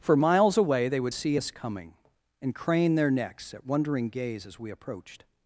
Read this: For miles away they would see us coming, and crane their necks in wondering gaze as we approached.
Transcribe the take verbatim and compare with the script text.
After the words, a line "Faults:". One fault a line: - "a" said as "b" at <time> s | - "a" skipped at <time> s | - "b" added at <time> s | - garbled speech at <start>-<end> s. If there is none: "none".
For miles away they would see us coming, and crane their necks at wondering gaze as we approached.
Faults:
- "in" said as "at" at 3.5 s